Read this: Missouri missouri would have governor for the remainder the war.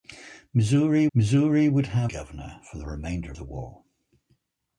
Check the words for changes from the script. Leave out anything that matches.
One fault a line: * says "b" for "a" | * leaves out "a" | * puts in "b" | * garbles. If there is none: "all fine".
all fine